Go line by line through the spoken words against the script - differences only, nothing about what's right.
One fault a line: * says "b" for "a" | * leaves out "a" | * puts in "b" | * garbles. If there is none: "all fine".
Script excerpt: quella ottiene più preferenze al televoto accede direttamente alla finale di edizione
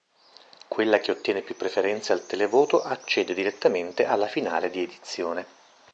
* puts in "che"